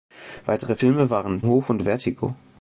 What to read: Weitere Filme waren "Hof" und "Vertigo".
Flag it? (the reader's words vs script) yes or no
no